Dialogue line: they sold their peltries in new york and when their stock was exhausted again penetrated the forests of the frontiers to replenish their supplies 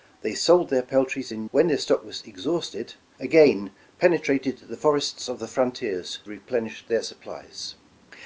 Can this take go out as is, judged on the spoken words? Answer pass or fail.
fail